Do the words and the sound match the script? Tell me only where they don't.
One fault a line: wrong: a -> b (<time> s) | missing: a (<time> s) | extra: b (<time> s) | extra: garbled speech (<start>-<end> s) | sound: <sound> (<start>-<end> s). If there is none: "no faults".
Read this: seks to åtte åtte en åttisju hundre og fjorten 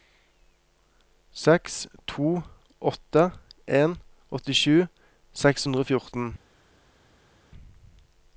missing: åtte (3.2 s)
extra: seks (5.4 s)